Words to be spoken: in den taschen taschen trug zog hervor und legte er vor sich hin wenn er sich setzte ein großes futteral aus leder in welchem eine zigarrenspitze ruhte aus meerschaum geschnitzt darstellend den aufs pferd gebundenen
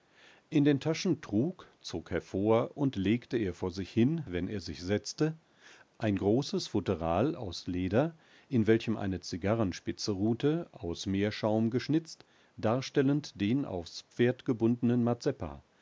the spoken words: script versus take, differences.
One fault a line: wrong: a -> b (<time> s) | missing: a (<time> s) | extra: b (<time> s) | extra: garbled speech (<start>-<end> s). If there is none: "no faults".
missing: taschen (1.2 s)